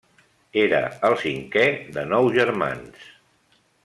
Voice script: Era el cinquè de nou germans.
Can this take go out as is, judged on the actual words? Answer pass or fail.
pass